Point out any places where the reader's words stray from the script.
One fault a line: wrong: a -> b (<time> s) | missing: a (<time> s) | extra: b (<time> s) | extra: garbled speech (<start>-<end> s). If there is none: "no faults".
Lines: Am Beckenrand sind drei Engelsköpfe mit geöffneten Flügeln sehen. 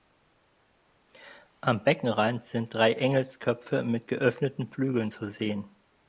extra: zu (5.1 s)